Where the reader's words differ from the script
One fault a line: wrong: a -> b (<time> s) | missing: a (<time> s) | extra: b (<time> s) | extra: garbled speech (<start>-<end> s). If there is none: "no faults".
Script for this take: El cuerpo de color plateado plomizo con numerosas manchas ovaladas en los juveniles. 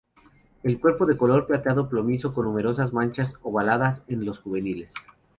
no faults